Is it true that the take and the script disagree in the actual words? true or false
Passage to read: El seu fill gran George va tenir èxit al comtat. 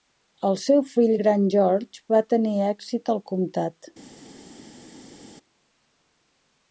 false